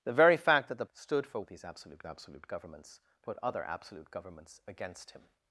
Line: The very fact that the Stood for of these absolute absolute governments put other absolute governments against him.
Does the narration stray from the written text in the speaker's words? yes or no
no